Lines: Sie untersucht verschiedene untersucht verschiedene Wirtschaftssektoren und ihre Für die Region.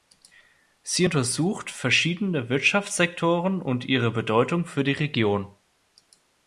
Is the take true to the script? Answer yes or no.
no